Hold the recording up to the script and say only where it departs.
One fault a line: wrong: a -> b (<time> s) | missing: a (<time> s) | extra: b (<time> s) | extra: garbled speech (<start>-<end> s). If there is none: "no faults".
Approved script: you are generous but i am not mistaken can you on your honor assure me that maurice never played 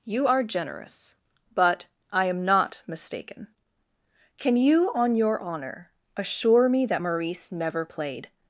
no faults